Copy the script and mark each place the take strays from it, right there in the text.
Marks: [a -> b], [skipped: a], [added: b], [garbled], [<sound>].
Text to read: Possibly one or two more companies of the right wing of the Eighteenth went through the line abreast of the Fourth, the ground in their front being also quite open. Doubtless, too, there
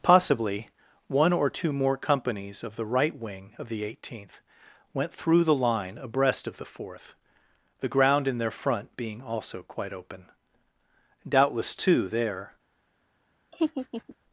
Possibly one or two more companies of the right wing of the Eighteenth went through the line abreast of the Fourth, the ground in their front being also quite open. Doubtless, too, there [laugh]